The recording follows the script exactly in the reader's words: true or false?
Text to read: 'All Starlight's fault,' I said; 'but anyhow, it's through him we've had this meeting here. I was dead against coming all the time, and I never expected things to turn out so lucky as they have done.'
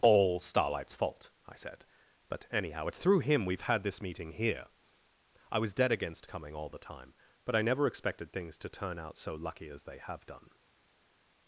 false